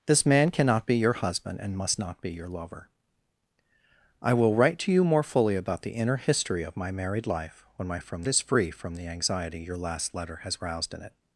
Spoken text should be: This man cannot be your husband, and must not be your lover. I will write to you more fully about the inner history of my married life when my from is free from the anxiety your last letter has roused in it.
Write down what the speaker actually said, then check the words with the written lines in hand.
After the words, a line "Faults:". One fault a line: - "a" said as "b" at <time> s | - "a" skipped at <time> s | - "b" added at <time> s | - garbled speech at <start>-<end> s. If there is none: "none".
This man cannot be your husband, and must not be your lover. I will write to you more fully about the inner history of my married life when my from is free from the anxiety your last letter has roused in it.
Faults:
none